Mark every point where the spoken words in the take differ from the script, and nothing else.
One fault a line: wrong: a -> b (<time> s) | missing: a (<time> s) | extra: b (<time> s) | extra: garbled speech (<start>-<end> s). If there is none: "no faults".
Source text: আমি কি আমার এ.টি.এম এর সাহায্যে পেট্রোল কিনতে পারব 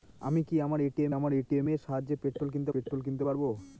extra: আমার এ.টি.এম (1.1 s)
extra: পেট্রোল কিনতে (2.7 s)